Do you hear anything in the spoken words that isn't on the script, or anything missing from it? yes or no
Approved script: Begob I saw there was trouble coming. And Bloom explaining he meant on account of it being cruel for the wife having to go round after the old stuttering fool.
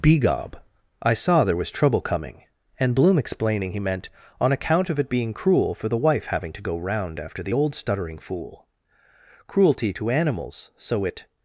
yes